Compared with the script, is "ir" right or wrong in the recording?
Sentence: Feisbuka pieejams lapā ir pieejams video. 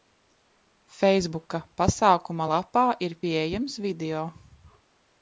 right